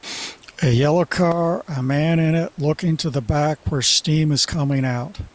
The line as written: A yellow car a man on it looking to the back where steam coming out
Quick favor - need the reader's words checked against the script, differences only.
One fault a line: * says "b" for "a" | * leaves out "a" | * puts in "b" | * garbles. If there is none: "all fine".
* says "in" for "on"
* puts in "is"